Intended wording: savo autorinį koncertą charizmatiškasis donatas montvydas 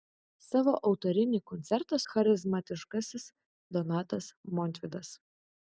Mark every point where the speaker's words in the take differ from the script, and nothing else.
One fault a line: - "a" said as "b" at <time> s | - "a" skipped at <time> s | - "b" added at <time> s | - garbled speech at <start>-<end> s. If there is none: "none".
none